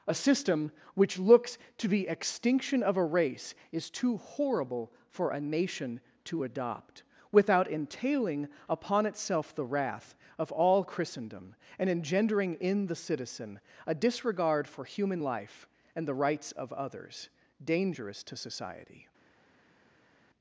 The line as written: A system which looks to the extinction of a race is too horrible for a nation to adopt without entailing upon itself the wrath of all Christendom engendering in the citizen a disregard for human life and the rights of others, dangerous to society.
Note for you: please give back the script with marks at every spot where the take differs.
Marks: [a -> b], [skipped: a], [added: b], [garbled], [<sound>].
A system which looks to the extinction of a race is too horrible for a nation to adopt without entailing upon itself the wrath of all Christendom [added: and] engendering in the citizen a disregard for human life and the rights of others, dangerous to society.